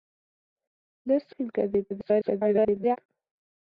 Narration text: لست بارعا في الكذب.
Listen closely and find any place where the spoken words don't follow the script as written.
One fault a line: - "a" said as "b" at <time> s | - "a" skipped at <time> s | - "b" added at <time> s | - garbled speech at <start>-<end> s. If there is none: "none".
- "بارعا" skipped at 1.4 s
- garbled speech at 1.9-3.0 s